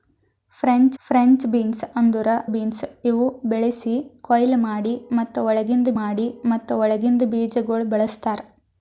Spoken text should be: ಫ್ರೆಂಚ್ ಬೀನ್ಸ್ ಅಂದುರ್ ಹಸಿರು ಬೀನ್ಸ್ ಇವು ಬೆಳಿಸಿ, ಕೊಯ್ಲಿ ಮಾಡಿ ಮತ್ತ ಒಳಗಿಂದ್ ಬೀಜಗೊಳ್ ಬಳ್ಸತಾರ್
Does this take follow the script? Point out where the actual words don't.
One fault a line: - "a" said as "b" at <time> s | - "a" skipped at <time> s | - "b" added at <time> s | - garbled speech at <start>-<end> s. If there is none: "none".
- "ಫ್ರೆಂಚ್" added at 1.0 s
- "ಹಸಿರು" skipped at 2.3 s
- "ಮಾಡಿ ಮತ್ತ ಒಳಗಿಂದ್" added at 5.9 s